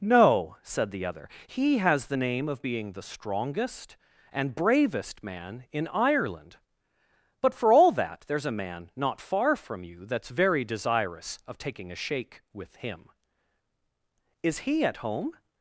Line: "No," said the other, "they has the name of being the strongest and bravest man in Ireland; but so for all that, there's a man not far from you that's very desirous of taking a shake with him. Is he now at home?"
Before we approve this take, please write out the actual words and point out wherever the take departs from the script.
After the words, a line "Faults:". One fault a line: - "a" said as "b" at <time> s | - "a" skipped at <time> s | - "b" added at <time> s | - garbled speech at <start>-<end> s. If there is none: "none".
"No," said the other, "he has the name of being the strongest and bravest man in Ireland; but for all that, there's a man not far from you that's very desirous of taking a shake with him. Is he at home?"
Faults:
- "they" said as "he" at 1.5 s
- "so" skipped at 7.5 s
- "now" skipped at 14.8 s